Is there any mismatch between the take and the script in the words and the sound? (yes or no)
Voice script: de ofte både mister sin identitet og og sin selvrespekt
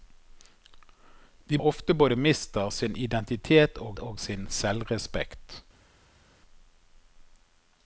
no